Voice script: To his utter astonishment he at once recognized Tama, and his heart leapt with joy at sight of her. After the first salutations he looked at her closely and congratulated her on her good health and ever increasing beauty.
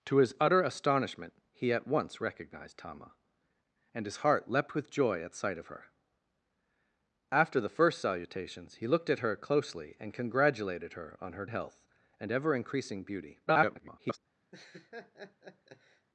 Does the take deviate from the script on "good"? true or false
true